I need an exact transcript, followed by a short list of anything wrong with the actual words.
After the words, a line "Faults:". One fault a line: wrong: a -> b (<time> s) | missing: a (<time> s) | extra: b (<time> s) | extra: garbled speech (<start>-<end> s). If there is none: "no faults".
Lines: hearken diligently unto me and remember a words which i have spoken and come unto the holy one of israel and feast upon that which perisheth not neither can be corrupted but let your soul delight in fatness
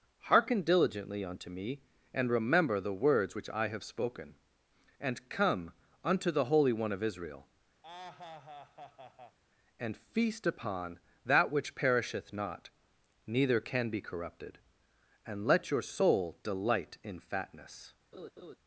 hearken diligently unto me and remember the words which i have spoken and come unto the holy one of israel and feast upon that which perisheth not neither can be corrupted and let your soul delight in fatness
Faults:
wrong: a -> the (2.8 s)
wrong: but -> and (15.2 s)